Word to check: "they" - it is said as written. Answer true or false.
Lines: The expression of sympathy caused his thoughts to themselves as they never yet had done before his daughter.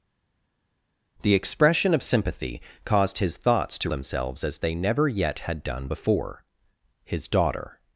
true